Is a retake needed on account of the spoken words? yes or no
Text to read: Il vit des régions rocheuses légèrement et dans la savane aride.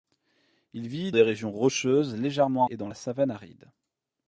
no